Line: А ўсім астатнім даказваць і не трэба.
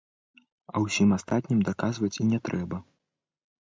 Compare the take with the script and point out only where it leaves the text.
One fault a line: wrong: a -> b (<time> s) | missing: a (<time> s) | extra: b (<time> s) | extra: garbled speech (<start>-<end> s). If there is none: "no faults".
no faults